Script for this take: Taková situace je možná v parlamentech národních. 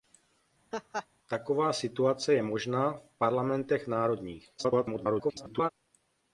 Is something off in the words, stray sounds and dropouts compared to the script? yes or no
yes